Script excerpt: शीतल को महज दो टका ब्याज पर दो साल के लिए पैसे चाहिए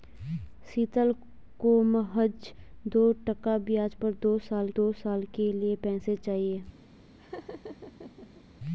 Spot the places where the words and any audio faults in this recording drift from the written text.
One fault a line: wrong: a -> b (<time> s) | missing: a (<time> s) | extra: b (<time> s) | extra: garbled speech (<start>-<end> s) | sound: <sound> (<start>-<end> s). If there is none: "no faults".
extra: दो साल (4.7 s)
sound: laugh (7.2-8.4 s)